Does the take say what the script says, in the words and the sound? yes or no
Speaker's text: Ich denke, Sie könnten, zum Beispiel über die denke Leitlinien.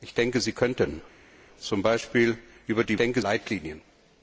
yes